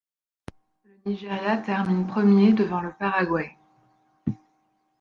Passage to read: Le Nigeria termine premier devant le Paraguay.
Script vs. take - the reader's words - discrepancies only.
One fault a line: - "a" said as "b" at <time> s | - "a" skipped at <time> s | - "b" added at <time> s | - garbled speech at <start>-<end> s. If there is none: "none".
none